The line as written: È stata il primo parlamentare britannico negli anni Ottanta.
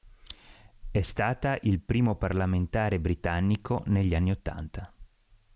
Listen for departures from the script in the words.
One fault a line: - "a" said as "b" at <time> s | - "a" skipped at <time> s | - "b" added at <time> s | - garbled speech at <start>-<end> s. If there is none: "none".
none